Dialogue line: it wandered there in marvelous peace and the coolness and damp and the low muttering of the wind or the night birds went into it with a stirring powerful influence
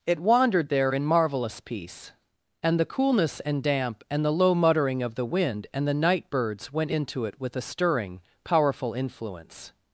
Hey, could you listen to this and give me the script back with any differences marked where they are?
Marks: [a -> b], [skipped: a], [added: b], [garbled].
it wandered there in marvelous peace and the coolness and damp and the low muttering of the wind [or -> and] the night birds went into it with a stirring powerful influence